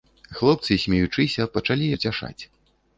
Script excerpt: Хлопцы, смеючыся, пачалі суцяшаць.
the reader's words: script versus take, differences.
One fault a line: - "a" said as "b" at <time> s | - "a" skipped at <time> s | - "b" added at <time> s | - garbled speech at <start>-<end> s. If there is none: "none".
none